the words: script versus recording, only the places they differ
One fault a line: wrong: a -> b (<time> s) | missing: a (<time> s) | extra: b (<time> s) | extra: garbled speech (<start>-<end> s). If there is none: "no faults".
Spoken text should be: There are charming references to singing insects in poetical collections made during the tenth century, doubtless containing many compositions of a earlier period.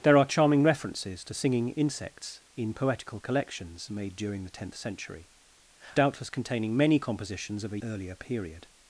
no faults